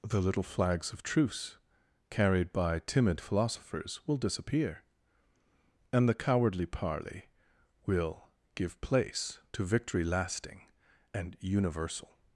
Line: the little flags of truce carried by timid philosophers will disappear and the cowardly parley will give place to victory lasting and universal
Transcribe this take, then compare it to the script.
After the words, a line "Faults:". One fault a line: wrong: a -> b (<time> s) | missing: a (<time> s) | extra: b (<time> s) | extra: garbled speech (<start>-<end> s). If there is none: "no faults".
the little flags of truce carried by timid philosophers will disappear and the cowardly parley will give place to victory lasting and universal
Faults:
no faults